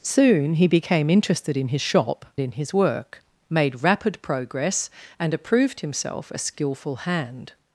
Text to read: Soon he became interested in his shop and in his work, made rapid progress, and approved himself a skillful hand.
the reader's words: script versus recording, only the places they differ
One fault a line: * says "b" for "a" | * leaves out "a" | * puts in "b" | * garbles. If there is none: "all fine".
* leaves out "and"